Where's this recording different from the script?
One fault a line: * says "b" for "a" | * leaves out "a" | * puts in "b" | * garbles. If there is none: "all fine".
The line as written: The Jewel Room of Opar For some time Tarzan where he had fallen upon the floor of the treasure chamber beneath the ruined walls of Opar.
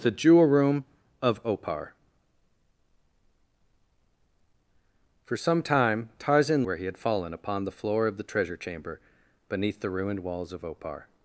all fine